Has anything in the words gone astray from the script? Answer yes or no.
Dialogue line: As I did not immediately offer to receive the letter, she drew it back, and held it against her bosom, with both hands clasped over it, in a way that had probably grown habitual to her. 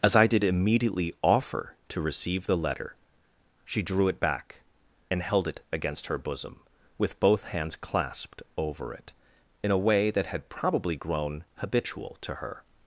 yes